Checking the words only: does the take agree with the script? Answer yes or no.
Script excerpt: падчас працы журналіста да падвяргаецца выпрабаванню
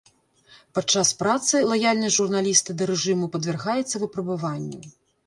no